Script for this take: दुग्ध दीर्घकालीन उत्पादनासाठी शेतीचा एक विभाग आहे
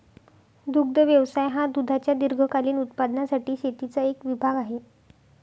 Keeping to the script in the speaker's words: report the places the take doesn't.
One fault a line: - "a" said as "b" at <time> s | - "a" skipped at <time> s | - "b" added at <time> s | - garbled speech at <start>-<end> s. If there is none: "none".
- "व्यवसाय हा दुधाच्या" added at 1.0 s